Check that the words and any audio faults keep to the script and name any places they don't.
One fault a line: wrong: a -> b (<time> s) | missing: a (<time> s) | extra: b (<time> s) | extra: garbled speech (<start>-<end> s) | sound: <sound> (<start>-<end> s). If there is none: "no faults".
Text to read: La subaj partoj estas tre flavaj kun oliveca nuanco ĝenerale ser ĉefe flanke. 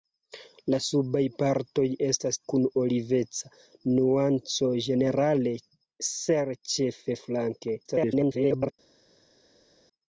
missing: tre flavaj (2.4 s)
extra: garbled speech (7.8-8.7 s)